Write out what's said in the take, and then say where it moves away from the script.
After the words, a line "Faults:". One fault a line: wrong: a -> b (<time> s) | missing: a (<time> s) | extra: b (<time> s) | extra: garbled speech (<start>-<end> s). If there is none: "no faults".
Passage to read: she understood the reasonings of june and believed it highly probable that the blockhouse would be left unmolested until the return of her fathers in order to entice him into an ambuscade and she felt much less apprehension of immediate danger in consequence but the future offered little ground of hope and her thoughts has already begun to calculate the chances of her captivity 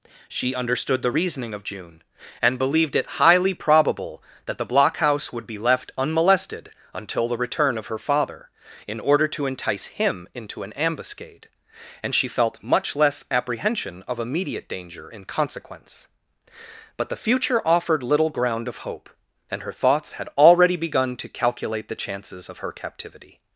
she understood the reasoning of june and believed it highly probable that the blockhouse would be left unmolested until the return of her father in order to entice him into an ambuscade and she felt much less apprehension of immediate danger in consequence but the future offered little ground of hope and her thoughts had already begun to calculate the chances of her captivity
Faults:
wrong: reasonings -> reasoning (1.1 s)
wrong: fathers -> father (8.0 s)
wrong: has -> had (20.1 s)